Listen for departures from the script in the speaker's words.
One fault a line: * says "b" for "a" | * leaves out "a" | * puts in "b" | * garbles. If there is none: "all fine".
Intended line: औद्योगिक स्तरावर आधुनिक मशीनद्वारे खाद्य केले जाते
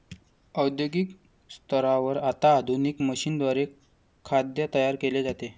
* puts in "आता"
* puts in "तयार"